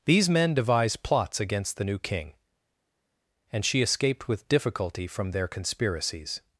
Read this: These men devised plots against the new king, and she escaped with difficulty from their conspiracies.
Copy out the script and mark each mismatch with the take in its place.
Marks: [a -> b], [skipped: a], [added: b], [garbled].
These men devised plots against the new king, and she escaped with difficulty from their conspiracies.